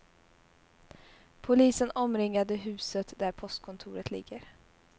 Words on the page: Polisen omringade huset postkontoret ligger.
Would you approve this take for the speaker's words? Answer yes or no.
no